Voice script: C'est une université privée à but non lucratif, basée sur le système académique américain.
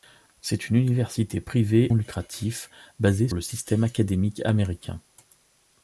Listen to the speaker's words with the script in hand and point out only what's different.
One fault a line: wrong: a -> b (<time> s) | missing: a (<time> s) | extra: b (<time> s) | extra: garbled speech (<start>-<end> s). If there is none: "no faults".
missing: à but non (1.9 s)
missing: sur (3.3 s)